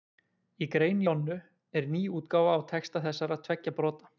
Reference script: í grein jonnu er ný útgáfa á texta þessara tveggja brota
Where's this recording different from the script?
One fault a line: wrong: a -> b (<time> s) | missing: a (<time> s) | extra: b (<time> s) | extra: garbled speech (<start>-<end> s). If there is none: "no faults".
no faults